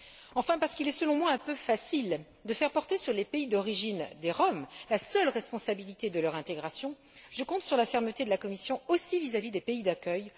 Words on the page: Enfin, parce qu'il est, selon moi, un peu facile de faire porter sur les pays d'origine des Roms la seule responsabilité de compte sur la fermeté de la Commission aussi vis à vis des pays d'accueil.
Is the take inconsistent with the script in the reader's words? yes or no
yes